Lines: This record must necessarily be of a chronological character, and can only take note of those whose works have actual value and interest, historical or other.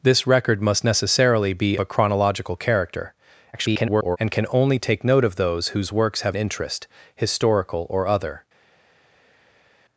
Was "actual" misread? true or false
true